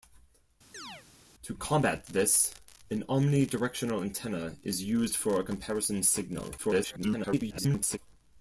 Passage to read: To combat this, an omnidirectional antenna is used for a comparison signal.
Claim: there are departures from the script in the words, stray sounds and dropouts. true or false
true